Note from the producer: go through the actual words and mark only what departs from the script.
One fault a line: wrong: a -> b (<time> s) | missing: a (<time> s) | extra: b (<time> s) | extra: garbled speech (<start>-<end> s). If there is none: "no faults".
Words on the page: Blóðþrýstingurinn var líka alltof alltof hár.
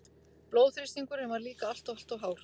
no faults